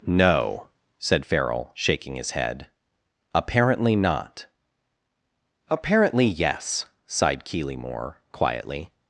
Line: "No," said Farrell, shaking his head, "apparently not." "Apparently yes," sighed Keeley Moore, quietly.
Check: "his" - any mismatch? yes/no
no